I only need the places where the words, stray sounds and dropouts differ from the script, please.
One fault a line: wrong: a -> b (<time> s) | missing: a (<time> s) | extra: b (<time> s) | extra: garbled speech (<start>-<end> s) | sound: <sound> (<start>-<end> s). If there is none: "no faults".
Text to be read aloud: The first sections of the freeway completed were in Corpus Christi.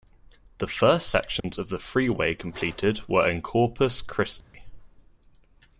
sound: dropout (1.4-1.4 s)
sound: dropout (4.4-4.5 s)